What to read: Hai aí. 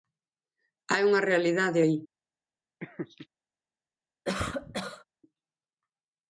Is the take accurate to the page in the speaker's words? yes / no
no